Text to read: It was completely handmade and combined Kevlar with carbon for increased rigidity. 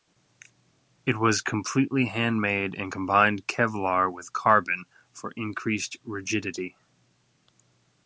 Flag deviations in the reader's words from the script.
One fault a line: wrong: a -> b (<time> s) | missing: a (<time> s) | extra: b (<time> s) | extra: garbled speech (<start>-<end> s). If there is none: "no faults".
no faults